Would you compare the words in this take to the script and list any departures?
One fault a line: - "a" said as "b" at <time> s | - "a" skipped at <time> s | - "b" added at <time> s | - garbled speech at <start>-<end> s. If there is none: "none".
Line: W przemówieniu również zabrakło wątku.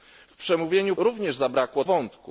none